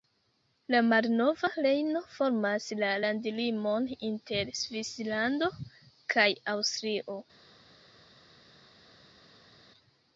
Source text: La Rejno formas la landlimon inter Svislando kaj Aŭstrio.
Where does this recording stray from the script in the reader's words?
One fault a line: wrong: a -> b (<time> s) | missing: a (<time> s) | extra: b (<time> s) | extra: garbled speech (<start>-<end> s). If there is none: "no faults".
extra: malnova (0.8 s)